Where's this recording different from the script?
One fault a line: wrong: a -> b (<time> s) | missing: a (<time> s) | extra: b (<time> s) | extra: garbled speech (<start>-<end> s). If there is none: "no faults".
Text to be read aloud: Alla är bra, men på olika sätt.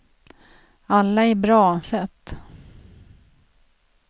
missing: men på olika (1.8 s)